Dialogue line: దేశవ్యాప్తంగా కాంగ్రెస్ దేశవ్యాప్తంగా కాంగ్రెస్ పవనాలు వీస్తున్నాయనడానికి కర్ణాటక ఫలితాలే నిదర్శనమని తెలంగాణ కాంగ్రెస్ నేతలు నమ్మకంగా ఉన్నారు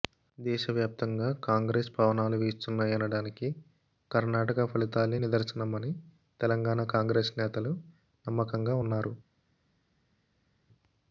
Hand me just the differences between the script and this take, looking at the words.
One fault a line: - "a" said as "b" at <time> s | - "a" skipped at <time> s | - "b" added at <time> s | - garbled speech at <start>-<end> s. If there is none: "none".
- "దేశవ్యాప్తంగా కాంగ్రెస్" skipped at 1.9 s